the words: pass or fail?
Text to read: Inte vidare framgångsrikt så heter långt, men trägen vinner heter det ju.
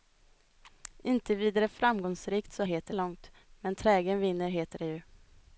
pass